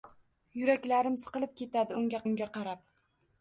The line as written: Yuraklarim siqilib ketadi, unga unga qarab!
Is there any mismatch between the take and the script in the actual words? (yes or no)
no